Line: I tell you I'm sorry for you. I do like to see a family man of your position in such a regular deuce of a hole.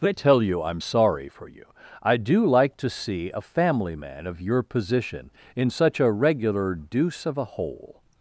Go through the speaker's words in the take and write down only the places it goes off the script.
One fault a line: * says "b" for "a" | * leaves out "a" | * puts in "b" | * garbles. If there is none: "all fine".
all fine